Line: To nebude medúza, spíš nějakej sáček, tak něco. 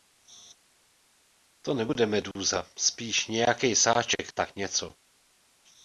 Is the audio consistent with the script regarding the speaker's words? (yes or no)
yes